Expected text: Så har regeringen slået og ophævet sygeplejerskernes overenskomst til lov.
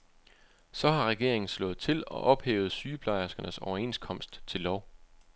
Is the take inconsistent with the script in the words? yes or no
yes